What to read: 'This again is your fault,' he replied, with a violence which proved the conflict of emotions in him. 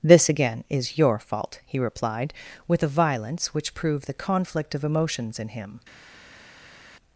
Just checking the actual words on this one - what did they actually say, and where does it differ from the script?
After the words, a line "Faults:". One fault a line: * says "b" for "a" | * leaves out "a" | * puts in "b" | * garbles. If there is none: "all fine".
'This again is your fault,' he replied, with a violence which proved the conflict of emotions in him.
Faults:
all fine